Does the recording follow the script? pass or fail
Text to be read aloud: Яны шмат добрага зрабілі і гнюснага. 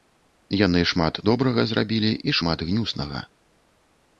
fail